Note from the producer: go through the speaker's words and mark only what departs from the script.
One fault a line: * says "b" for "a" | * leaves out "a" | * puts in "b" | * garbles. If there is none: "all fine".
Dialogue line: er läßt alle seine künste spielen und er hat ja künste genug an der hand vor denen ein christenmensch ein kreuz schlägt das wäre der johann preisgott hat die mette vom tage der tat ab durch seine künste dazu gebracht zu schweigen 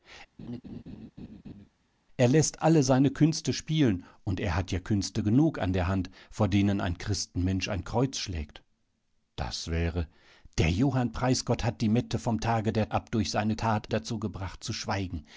* leaves out "tat"
* says "tat" for "künste"